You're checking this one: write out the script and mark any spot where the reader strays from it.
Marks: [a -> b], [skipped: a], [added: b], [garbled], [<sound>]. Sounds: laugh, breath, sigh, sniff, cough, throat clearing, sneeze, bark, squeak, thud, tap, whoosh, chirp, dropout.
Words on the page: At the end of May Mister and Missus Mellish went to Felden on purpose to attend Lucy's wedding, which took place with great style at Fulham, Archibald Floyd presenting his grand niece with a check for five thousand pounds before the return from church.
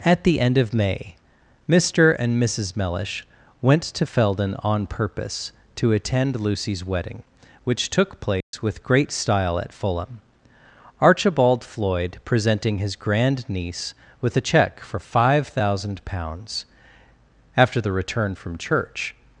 At the end of May Mister and Missus Mellish went to Felden on purpose to attend Lucy's wedding, which took place [dropout] with great style at Fulham, Archibald Floyd presenting his grand niece with a check for five thousand pounds [before -> after] the return from church.